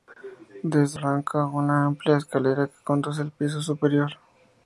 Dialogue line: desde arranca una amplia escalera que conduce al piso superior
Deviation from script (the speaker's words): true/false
false